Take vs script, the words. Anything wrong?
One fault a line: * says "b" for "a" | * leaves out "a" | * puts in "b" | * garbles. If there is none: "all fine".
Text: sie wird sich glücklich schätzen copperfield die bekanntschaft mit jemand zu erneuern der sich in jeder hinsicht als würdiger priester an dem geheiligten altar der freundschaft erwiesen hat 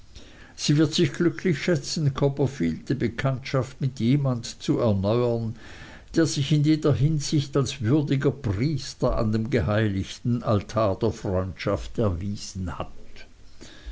all fine